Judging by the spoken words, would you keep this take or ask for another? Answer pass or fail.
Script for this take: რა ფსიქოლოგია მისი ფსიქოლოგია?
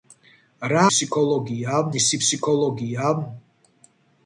pass